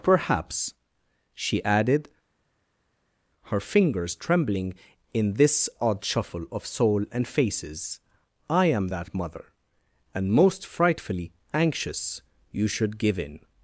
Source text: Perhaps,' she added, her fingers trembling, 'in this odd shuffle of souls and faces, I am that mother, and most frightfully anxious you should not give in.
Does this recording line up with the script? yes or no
no